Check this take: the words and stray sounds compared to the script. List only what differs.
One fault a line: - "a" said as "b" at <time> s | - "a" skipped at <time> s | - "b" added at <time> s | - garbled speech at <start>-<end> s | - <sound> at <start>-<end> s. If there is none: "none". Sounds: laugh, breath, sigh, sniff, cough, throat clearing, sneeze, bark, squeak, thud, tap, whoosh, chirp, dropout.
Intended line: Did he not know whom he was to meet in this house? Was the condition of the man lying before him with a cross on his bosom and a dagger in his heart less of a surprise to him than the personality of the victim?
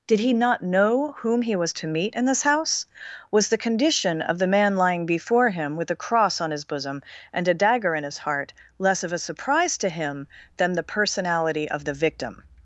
none